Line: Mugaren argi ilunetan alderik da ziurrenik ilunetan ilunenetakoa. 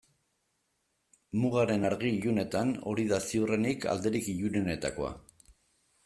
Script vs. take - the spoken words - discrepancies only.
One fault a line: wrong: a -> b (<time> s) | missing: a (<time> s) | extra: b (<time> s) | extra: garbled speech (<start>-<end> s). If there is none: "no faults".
wrong: alderik -> hori (2.9 s)
wrong: ilunetan -> alderik (3.9 s)